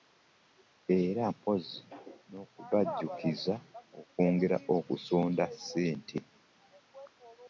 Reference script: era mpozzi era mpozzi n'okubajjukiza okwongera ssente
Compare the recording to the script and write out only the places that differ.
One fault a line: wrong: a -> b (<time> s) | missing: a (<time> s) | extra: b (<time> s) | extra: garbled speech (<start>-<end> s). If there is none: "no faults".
missing: era mpozzi (1.8 s)
extra: okusonda (4.7 s)